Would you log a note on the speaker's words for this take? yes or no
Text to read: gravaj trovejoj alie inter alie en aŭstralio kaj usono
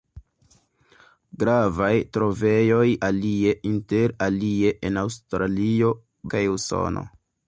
no